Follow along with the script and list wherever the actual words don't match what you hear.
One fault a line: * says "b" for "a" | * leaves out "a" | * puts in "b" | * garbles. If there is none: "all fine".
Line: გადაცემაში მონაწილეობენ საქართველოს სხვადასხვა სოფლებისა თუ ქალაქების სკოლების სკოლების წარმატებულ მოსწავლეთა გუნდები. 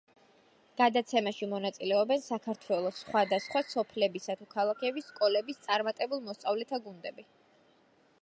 * leaves out "სკოლების"